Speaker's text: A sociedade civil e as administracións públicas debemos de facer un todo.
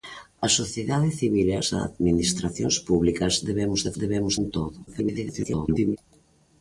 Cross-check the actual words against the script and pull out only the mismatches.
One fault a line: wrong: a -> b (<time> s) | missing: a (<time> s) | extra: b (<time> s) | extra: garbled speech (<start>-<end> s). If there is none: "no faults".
wrong: facer -> debemos (4.0 s)
extra: garbled speech (4.9-6.0 s)